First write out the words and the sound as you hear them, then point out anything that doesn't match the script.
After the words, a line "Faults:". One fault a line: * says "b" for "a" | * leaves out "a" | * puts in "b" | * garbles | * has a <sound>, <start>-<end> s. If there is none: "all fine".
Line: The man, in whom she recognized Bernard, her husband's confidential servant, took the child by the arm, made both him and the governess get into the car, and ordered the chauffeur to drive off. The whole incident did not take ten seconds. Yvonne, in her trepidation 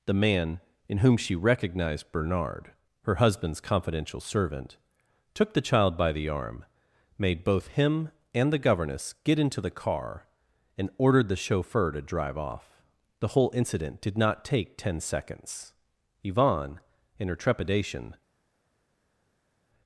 The man, in whom she recognized Bernard, her husband's confidential servant, took the child by the arm, made both him and the governess get into the car, and ordered the chauffeur to drive off. The whole incident did not take ten seconds. Yvonne, in her trepidation
Faults:
all fine